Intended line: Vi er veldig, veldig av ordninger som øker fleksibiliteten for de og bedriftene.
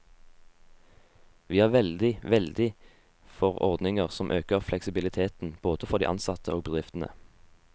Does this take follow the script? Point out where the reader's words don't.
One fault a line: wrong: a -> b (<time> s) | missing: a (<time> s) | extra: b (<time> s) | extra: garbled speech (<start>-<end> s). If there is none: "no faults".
wrong: av -> for (3.4 s)
extra: både (5.6 s)
extra: ansatte (6.1 s)